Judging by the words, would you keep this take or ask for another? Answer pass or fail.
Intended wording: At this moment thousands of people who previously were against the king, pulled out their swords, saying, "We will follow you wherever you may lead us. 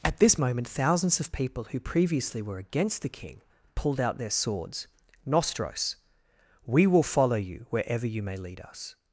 fail